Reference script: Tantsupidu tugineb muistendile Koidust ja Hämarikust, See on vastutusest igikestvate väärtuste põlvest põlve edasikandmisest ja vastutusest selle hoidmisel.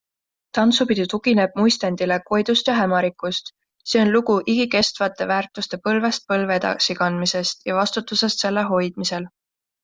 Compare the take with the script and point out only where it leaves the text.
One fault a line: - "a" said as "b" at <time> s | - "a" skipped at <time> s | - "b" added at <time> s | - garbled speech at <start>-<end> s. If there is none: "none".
- "vastutusest" said as "lugu" at 4.1 s